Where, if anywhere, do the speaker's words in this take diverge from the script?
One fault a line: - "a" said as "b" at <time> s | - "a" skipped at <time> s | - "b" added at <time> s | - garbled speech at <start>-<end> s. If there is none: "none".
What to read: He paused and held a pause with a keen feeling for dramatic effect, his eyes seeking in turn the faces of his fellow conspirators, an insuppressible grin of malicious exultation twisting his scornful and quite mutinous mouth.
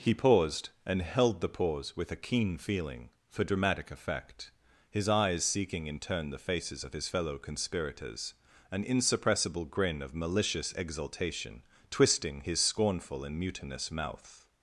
- "a" said as "the" at 1.4 s
- "quite" skipped at 13.4 s